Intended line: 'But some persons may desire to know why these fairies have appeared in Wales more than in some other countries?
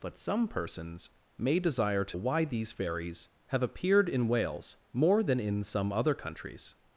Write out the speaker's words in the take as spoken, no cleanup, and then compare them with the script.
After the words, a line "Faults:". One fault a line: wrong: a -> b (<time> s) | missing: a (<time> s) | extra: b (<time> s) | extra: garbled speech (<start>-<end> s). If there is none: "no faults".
'But some persons may desire to why these fairies have appeared in Wales more than in some other countries?
Faults:
missing: know (2.2 s)